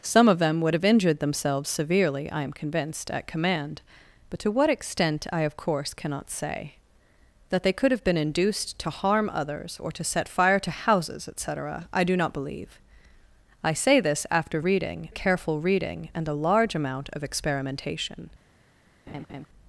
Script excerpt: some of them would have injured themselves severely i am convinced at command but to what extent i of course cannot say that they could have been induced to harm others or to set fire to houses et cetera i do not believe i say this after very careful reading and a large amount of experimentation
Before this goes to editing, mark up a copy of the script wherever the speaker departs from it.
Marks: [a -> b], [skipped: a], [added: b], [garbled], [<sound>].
some of them would have injured themselves severely i am convinced at command but to what extent i of course cannot say that they could have been induced to harm others or to set fire to houses et cetera i do not believe i say this after [very -> reading] careful reading and a large amount of experimentation [laugh]